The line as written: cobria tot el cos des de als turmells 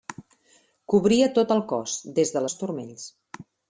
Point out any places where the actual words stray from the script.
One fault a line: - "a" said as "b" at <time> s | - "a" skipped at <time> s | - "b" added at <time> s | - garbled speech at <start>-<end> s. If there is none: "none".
none